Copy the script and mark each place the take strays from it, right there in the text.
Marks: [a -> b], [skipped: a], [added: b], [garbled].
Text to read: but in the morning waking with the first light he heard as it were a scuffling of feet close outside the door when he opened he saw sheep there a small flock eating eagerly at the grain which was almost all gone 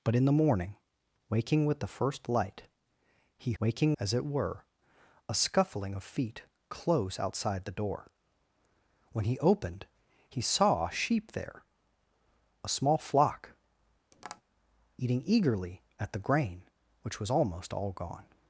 but in the morning waking with the first light he [heard -> waking] as it were a scuffling of feet close outside the door when he opened he saw sheep there a small flock eating eagerly at the grain which was almost all gone